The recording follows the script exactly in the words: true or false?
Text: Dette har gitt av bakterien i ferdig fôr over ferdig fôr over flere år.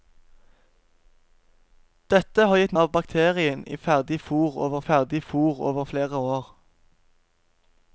true